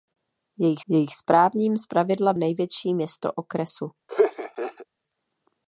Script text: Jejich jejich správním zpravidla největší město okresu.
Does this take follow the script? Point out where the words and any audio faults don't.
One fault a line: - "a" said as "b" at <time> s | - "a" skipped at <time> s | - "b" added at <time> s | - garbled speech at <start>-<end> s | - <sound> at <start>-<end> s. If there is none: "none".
- laugh at 4.1-4.9 s